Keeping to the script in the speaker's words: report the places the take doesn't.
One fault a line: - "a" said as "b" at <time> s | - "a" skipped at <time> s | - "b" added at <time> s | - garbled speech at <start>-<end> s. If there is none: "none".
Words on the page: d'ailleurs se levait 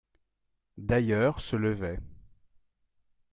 none